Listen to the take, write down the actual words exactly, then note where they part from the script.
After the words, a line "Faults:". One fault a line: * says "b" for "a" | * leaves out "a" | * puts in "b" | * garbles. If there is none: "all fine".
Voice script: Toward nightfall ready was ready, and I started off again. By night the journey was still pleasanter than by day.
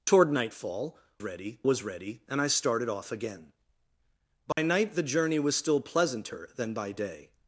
Toward nightfall ready was ready, and I started off again. By night the journey was still pleasanter than by day.
Faults:
all fine